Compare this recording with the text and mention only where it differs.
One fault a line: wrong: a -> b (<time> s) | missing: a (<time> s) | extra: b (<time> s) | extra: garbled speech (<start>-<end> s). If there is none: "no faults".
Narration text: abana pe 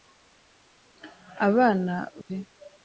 no faults